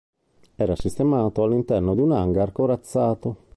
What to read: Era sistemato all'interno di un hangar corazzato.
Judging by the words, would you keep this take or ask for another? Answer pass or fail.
pass